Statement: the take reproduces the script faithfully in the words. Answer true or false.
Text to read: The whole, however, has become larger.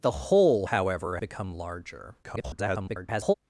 false